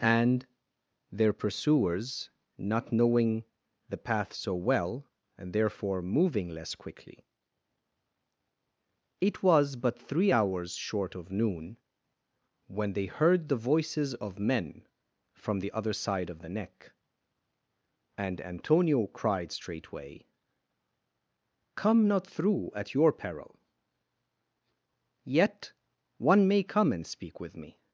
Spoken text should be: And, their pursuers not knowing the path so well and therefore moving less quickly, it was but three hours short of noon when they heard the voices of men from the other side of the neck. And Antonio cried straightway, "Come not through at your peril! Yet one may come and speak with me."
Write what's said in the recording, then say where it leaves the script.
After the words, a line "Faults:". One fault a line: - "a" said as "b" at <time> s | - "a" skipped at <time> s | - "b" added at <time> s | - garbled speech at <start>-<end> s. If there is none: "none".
And, their pursuers not knowing the path so well and therefore moving less quickly, it was but three hours short of noon when they heard the voices of men from the other side of the neck. And Antonio cried straightway, "Come not through at your peril! Yet one may come and speak with me."
Faults:
none